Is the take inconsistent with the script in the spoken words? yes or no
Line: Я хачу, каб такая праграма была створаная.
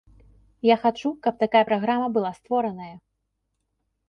no